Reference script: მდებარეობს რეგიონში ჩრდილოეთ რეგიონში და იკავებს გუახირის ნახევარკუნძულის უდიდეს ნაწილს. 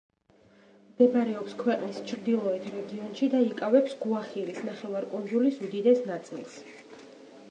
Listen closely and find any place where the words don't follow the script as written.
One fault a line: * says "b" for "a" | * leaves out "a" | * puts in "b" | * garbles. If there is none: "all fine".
* says "ქვეყნის" for "რეგიონში"